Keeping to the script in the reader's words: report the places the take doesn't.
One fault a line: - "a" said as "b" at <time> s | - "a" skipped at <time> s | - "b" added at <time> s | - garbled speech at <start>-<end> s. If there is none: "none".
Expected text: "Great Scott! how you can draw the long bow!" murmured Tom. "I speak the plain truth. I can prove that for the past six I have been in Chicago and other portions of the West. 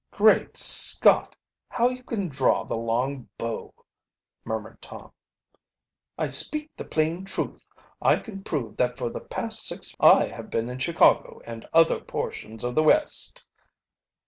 none